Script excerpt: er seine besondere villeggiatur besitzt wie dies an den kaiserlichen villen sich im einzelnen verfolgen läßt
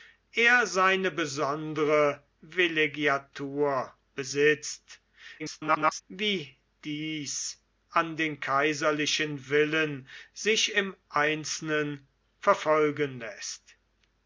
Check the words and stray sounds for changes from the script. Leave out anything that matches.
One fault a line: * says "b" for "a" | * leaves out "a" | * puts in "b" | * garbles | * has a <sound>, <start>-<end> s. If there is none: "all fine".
* garbles